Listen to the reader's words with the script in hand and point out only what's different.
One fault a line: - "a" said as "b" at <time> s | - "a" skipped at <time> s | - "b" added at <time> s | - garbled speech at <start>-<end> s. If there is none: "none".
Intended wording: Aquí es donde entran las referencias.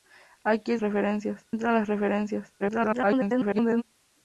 - "donde" said as "referencias" at 0.8 s
- garbled speech at 2.6-3.8 s